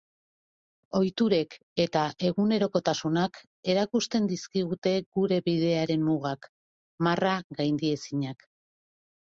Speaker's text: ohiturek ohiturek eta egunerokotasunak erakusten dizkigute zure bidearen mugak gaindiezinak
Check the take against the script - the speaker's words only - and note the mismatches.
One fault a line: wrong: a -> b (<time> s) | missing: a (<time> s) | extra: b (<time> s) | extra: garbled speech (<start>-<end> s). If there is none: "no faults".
missing: ohiturek (1.6 s)
wrong: zure -> gure (5.2 s)
extra: marra (7.1 s)